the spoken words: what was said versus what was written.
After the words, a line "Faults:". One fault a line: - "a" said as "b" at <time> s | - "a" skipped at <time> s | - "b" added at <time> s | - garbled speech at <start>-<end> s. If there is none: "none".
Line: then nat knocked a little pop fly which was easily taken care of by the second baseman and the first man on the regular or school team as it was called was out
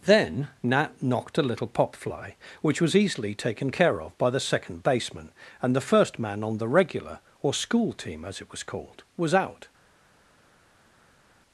then nat knocked a little pop fly which was easily taken care of by the second baseman and the first man on the regular or school team as it was called was out
Faults:
none